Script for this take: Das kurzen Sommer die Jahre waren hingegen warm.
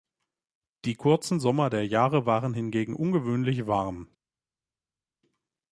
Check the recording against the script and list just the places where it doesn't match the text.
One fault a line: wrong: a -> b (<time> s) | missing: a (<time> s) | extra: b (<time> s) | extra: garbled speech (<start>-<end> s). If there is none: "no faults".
wrong: Das -> Die (0.8 s)
wrong: die -> der (1.7 s)
extra: ungewöhnlich (3.0 s)